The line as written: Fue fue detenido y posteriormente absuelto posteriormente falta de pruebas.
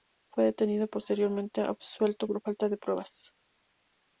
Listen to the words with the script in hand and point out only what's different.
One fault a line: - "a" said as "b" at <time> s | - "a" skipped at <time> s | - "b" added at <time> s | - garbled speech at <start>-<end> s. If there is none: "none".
- "fue" skipped at 0.5 s
- "posteriormente" said as "por" at 2.3 s